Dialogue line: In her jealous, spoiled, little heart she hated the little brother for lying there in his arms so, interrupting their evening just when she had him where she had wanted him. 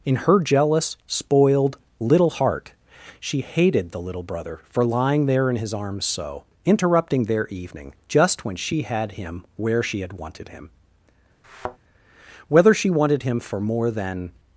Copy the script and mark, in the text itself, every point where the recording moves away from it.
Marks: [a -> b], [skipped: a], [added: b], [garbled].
In her jealous, spoiled, little heart she hated the little brother for lying there in his arms so, interrupting their evening just when she had him where she had wanted him. [added: Whether she wanted him for more than]